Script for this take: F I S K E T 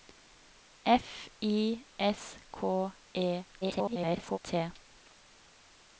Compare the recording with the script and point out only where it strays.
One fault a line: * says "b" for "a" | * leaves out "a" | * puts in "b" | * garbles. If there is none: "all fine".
* garbles